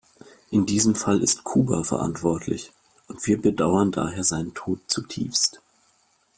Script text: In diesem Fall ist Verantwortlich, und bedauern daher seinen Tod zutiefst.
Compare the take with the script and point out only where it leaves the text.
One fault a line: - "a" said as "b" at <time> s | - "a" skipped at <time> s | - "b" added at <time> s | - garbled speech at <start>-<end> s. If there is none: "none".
- "Kuba" added at 1.4 s
- "wir" added at 3.3 s